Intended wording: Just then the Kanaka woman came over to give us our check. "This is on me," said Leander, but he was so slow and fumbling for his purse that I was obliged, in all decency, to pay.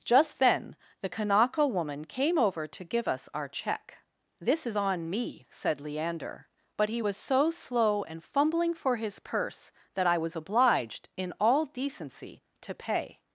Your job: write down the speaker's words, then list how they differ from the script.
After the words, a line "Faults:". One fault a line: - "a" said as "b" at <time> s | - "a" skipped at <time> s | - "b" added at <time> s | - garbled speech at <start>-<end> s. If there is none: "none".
Just then the Kanaka woman came over to give us our check. "This is on me," said Leander, but he was so slow and fumbling for his purse that I was obliged, in all decency, to pay.
Faults:
none